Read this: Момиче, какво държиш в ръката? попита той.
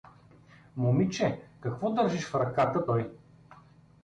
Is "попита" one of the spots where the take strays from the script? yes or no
yes